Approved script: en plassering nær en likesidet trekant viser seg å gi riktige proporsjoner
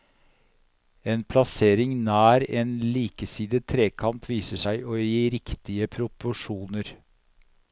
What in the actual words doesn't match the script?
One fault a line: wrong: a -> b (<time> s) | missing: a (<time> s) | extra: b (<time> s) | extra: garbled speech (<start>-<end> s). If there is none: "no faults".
no faults